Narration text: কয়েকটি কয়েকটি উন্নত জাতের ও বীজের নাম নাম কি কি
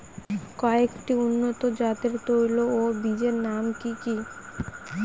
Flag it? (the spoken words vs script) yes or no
yes